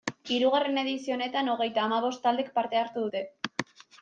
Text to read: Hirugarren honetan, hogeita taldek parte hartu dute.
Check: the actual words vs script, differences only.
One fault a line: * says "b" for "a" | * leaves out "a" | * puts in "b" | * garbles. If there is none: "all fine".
* puts in "edizio"
* puts in "hamabost"